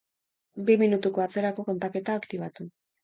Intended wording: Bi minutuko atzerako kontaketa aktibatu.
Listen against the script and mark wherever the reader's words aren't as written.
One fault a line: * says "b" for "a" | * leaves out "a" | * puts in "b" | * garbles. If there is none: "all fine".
all fine